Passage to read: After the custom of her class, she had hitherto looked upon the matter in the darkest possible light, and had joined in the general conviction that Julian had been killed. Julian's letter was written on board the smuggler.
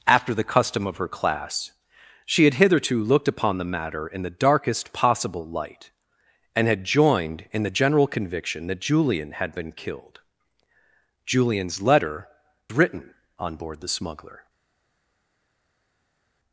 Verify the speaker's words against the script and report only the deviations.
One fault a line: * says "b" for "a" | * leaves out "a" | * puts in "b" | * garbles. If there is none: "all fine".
* leaves out "was"